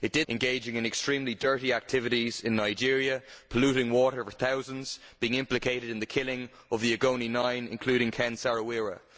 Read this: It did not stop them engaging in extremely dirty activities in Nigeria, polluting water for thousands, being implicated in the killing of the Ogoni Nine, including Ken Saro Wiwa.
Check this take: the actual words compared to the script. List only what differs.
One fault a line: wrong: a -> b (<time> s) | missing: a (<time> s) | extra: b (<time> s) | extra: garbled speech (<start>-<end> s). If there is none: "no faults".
missing: not stop them (0.3 s)